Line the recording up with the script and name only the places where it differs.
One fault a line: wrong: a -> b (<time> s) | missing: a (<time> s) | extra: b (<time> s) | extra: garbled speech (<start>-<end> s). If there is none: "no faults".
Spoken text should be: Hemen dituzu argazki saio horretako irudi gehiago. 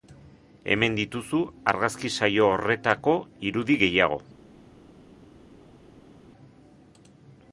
no faults